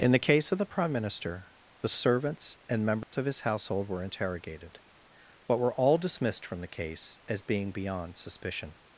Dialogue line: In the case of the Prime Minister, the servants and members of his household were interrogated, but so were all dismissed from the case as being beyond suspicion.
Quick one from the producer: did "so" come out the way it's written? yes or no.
no